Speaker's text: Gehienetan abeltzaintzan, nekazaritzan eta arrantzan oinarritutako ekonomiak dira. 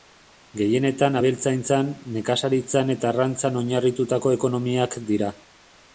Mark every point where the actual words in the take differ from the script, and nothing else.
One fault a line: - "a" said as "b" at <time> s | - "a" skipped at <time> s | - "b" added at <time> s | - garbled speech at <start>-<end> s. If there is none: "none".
none